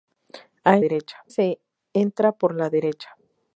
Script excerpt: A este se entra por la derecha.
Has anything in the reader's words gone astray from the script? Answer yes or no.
yes